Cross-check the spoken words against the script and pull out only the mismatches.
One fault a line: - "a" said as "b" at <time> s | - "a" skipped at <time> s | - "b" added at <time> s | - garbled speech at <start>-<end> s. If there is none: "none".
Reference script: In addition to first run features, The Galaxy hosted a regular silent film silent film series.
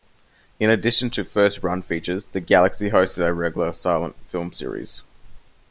- "silent film" skipped at 4.5 s